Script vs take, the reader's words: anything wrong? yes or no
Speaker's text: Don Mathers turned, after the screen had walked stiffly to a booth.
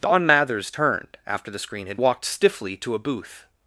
no